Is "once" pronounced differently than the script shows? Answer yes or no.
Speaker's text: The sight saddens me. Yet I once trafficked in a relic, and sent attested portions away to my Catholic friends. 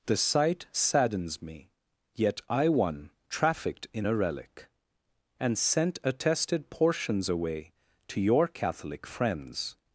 yes